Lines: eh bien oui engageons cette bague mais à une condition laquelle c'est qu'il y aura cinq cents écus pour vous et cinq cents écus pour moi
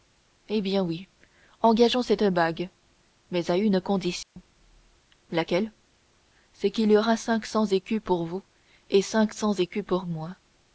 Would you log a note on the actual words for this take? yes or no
no